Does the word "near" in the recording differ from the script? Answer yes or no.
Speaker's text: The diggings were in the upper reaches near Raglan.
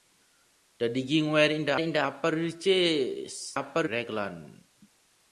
yes